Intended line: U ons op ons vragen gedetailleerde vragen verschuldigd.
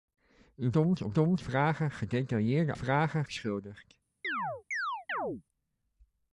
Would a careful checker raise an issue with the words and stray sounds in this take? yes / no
yes